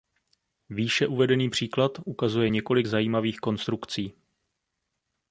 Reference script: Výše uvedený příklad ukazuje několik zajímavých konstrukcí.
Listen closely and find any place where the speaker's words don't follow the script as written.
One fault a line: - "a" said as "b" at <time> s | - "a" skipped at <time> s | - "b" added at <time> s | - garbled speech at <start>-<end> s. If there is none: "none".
none